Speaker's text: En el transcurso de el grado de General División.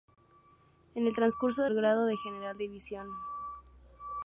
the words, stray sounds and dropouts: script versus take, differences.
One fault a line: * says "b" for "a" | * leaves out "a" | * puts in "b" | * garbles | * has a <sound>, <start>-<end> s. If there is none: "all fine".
all fine